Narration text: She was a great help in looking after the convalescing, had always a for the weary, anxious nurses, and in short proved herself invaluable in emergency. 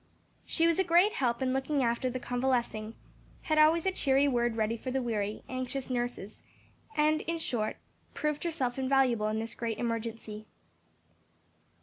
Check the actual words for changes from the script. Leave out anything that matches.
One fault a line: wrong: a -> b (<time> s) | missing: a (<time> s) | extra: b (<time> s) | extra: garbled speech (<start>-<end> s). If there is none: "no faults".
extra: cheery word ready (3.9 s)
extra: this great (9.4 s)